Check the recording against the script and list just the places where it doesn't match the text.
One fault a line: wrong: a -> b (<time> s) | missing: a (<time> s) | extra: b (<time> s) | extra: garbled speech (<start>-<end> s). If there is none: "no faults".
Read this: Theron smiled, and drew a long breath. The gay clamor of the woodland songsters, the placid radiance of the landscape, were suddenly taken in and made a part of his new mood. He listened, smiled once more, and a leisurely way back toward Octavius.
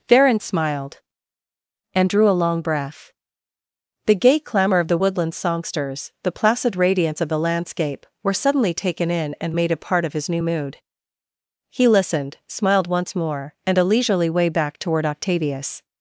no faults